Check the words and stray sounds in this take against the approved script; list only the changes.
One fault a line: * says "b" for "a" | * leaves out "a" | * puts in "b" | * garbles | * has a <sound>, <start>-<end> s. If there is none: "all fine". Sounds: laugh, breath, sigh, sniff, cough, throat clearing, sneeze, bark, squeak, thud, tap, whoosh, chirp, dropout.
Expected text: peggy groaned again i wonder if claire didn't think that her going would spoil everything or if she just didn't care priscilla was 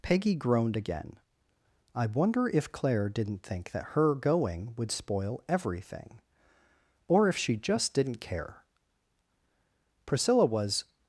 all fine